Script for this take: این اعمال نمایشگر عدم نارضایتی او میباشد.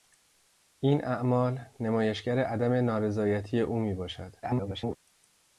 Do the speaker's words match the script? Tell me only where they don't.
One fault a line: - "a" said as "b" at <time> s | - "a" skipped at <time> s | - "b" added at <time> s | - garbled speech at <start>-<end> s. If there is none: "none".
- garbled speech at 4.4-5.0 s